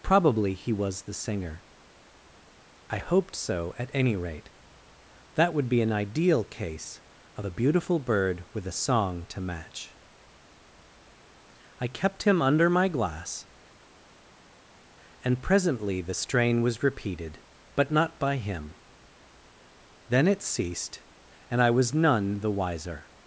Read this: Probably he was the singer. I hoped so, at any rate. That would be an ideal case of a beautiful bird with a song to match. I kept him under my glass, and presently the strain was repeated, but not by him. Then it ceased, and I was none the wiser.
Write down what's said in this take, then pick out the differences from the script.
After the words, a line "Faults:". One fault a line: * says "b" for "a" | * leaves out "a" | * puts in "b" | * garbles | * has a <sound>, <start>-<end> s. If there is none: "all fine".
Probably he was the singer. I hoped so, at any rate. That would be an ideal case of a beautiful bird with a song to match. I kept him under my glass, and presently the strain was repeated, but not by him. Then it ceased, and I was none the wiser.
Faults:
all fine